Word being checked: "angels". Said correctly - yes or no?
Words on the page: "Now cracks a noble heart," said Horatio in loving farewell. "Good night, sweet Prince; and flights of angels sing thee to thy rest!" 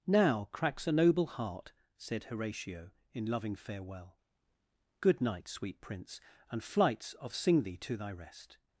no